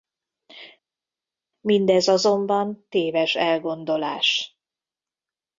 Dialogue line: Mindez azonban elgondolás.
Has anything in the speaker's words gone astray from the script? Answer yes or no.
yes